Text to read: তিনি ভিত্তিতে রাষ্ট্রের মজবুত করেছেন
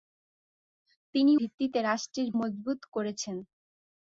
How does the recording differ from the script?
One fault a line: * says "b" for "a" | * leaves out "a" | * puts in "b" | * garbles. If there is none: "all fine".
all fine